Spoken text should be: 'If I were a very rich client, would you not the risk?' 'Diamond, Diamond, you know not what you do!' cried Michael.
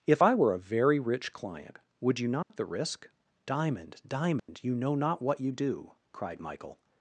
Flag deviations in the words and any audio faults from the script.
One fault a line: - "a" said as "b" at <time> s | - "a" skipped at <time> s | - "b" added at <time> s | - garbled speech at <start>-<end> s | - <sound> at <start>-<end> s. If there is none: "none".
- dropout at 2.4-2.5 s
- dropout at 4.4-4.5 s